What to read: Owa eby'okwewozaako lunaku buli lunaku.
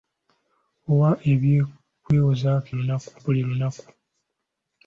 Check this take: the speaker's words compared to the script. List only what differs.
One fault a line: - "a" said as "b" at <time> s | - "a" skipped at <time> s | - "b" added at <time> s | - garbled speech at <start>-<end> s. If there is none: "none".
none